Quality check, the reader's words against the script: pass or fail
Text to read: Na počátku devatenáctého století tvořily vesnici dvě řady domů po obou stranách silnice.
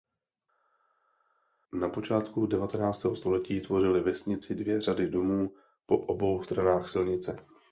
pass